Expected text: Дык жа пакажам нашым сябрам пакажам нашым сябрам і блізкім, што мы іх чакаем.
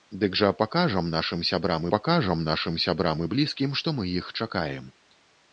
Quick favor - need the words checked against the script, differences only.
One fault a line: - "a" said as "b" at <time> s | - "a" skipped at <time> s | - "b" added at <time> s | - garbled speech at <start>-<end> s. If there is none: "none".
none